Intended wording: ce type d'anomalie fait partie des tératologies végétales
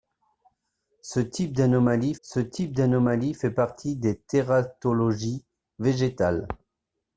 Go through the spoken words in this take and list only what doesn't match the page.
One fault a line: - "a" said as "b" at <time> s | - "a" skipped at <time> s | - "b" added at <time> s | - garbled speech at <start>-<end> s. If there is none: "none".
- "ce type d'anomalie" added at 2.2 s